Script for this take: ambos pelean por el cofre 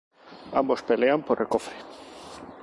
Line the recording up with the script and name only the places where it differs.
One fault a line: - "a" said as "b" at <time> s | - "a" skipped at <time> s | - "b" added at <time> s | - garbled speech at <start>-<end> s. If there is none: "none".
none